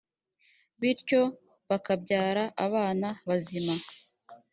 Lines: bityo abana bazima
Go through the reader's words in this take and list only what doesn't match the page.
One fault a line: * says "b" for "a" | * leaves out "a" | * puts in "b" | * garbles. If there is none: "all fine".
* puts in "bakabyara"